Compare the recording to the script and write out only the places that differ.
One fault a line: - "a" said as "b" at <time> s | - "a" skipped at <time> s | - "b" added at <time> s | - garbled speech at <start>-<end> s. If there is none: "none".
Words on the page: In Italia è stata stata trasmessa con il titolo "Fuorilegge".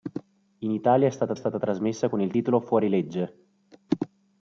none